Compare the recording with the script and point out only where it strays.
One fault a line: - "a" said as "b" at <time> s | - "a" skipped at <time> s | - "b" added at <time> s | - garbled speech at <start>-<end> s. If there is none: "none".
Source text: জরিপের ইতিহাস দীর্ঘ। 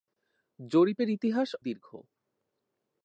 none